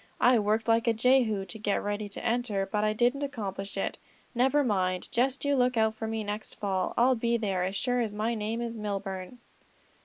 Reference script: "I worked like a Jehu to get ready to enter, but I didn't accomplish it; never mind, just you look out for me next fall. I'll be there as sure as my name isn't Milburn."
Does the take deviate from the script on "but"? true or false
false